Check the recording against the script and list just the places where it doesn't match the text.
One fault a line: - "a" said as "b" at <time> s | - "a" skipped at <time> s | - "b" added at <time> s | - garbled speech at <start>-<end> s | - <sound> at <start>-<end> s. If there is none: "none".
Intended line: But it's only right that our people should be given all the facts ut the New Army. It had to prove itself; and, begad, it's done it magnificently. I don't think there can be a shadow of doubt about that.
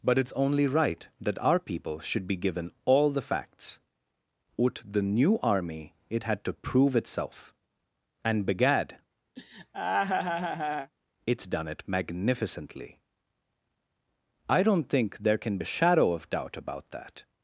- laugh at 9.4-10.9 s
- "be" skipped at 15.6 s